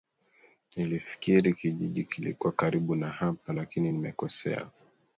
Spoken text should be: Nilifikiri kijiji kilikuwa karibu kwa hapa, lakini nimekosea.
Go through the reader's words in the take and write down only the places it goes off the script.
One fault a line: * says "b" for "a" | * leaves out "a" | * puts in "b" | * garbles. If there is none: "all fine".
* says "na" for "kwa"